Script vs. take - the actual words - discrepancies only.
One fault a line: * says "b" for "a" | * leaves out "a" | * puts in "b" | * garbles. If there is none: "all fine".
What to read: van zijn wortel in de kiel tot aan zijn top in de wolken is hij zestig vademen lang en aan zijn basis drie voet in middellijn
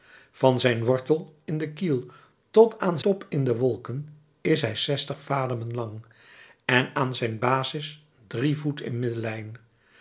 * leaves out "zijn"